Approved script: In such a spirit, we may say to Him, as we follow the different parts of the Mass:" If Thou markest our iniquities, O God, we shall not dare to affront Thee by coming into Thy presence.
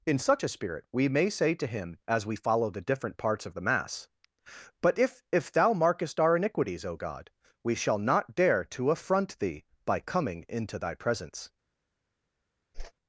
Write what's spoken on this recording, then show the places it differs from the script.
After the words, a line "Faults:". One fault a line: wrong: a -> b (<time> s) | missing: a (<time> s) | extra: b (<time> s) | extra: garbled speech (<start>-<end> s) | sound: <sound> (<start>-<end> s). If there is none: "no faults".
In such a spirit, we may say to Him, as we follow the different parts of the Mass:" but if If Thou markest our iniquities, O God, we shall not dare to affront Thee by coming into Thy presence.
Faults:
extra: but if (4.8 s)
sound: whoosh (12.7-12.9 s)